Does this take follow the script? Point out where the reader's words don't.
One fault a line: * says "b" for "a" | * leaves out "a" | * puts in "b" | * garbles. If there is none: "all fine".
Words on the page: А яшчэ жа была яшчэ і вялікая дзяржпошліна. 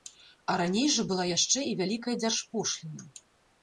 * says "раней" for "яшчэ"